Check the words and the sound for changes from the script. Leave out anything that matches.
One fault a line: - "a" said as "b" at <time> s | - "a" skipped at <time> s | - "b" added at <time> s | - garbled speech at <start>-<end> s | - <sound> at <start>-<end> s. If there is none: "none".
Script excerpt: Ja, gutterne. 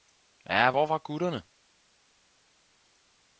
- "hvor var" added at 0.7 s